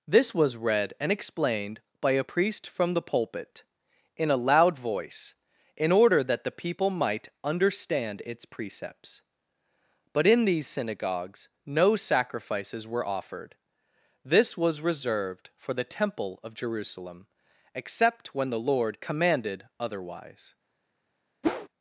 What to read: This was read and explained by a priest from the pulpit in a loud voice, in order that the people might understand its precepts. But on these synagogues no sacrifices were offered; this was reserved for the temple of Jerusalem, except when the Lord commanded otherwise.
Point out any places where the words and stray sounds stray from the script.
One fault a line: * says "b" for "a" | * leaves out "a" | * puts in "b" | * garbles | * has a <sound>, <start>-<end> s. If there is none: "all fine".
* says "in" for "on"
* has a whoosh, 21.4-21.7 s